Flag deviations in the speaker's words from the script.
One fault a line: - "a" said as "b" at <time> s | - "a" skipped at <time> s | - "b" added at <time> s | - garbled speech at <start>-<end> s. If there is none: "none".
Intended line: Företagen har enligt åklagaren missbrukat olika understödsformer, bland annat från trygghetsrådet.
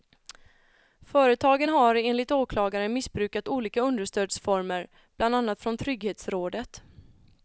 none